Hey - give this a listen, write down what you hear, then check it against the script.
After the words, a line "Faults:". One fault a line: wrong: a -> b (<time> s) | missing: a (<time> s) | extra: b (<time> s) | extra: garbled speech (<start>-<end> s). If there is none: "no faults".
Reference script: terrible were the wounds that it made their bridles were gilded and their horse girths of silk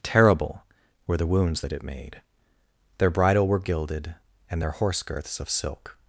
terrible were the wounds that it made their bridle were gilded and their horse girths of silk
Faults:
wrong: bridles -> bridle (3.1 s)